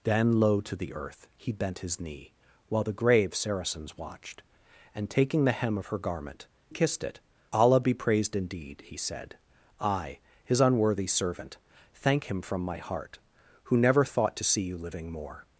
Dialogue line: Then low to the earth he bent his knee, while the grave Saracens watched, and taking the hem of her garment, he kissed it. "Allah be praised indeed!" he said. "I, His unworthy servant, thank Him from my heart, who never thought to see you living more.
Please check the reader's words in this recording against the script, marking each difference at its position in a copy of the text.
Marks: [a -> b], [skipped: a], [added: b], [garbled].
Then low to the earth he bent his knee, while the grave Saracens watched, and taking the hem of her garment, [skipped: he] kissed it. "Allah be praised indeed!" he said. "I, His unworthy servant, thank Him from my heart, who never thought to see you living more.